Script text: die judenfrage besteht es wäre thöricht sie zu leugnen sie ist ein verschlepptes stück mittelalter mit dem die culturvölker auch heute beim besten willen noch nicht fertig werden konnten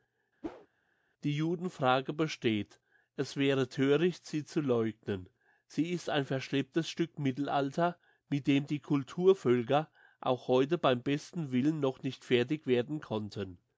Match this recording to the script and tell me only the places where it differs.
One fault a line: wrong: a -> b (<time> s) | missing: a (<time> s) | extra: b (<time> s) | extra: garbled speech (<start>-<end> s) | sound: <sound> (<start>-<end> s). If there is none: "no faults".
sound: whoosh (0.4-0.7 s)